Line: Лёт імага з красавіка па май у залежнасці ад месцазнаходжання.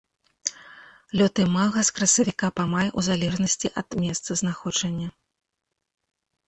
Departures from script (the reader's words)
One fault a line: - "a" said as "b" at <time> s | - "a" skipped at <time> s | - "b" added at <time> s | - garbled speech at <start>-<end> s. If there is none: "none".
none